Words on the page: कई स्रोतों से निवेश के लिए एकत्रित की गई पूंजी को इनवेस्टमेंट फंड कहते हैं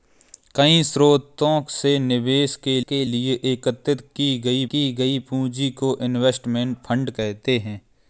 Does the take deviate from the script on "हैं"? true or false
false